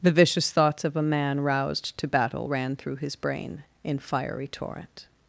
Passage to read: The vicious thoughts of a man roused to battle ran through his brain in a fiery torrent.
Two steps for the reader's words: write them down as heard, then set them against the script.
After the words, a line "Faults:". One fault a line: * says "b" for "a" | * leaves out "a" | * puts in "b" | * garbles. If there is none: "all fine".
The vicious thoughts of a man roused to battle ran through his brain in fiery torrent.
Faults:
* leaves out "a"